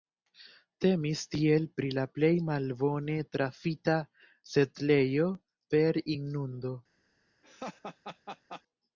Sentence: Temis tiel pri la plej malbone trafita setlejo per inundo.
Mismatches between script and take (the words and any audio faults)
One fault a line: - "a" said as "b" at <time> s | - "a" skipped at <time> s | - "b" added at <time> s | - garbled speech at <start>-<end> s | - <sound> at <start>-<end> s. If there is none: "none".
- laugh at 7.4-8.6 s